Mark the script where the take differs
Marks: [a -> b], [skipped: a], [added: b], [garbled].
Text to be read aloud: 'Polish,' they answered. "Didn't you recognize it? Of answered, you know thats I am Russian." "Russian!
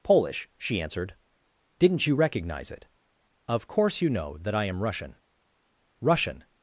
'Polish,' [they -> she] answered. "Didn't you recognize it? Of [answered, -> course] you know [thats -> that] I am Russian." "Russian!